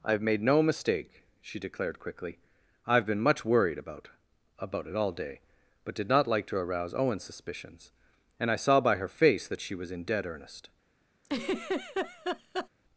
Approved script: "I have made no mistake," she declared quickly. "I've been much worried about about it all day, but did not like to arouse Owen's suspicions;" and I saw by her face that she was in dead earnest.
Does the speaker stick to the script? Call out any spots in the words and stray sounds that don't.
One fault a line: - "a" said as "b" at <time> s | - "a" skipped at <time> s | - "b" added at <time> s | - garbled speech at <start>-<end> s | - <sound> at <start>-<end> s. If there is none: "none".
- laugh at 11.2-12.7 s